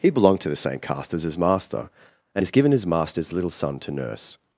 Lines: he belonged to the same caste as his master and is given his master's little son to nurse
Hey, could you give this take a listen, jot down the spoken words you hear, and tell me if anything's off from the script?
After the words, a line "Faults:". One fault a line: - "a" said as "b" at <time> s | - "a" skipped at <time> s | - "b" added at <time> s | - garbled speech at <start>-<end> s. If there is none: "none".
he belonged to the same caste as his master and is given his master's little son to nurse
Faults:
none